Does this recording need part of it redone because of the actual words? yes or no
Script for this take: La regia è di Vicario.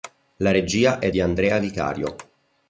yes